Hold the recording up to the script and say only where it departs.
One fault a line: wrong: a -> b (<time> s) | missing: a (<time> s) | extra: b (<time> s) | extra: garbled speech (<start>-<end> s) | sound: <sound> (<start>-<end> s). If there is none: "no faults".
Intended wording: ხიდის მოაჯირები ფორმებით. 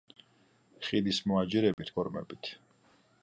sound: dropout (1.7-1.8 s)